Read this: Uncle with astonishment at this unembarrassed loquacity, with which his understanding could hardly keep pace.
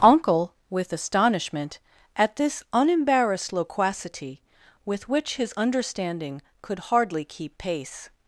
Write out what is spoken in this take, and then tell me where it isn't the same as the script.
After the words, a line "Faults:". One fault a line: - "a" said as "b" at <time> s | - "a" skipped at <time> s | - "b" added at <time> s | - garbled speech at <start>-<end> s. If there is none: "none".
Uncle with astonishment at this unembarrassed loquacity, with which his understanding could hardly keep pace.
Faults:
none